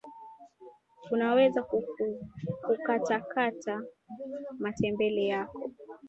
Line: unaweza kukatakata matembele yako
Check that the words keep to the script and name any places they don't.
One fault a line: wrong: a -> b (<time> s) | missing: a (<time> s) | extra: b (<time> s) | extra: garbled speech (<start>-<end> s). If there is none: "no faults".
no faults